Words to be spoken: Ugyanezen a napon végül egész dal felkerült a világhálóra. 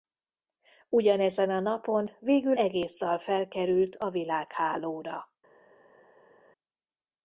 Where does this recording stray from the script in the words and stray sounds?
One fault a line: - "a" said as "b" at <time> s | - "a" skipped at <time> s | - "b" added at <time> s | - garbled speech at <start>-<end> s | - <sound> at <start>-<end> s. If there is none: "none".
none